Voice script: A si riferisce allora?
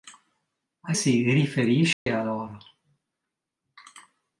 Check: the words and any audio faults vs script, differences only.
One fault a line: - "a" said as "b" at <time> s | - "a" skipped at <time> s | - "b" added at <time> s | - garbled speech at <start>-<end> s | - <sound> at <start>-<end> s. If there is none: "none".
- dropout at 1.9-2.1 s